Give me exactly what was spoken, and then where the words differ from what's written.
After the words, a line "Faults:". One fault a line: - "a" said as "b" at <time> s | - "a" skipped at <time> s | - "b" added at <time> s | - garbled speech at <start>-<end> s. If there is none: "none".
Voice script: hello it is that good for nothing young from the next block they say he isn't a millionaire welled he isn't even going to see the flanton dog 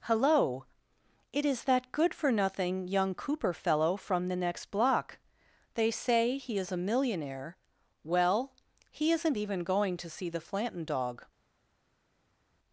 hello it is that good for nothing young cooper fellow from the next block they say he is a millionaire well he isn't even going to see the flanton dog
Faults:
- "cooper fellow" added at 3.1 s
- "isn't" said as "is" at 6.6 s
- "welled" said as "well" at 8.0 s